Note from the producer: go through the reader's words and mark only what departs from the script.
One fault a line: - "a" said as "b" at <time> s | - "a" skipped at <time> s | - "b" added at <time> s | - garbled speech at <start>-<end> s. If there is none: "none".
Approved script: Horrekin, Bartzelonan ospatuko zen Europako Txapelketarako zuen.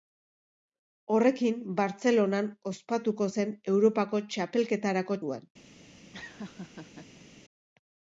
none